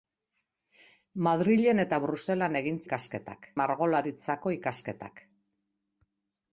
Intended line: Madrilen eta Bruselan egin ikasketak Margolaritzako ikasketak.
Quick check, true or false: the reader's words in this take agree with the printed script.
true